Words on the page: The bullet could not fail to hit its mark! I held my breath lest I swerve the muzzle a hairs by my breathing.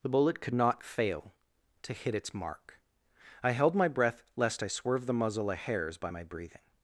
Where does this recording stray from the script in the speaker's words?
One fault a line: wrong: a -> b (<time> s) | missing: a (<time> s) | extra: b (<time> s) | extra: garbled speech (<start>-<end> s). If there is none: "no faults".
no faults